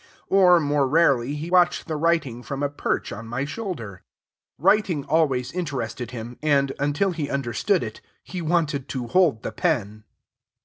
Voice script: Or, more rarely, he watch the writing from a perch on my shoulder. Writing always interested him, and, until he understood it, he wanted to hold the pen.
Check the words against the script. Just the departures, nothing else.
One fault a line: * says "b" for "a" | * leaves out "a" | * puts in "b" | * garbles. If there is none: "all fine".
all fine